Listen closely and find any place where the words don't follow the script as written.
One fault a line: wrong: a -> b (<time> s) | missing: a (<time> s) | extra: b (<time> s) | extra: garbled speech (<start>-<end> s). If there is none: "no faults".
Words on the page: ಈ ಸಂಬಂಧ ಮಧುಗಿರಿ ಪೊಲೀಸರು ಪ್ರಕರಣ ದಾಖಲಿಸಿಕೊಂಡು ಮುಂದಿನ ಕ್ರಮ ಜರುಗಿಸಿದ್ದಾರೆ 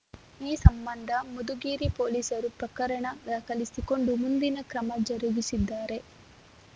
no faults